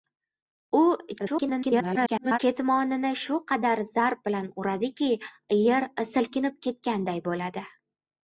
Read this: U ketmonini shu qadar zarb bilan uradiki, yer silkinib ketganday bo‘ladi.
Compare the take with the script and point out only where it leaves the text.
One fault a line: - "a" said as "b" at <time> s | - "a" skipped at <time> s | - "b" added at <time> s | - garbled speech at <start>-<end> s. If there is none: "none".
- garbled speech at 1.2-2.4 s